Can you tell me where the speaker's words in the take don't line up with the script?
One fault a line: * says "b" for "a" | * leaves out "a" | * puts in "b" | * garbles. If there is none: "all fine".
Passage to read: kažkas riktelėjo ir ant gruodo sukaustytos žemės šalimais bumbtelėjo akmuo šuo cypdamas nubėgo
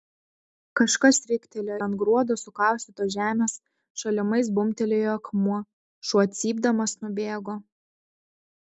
* leaves out "ir"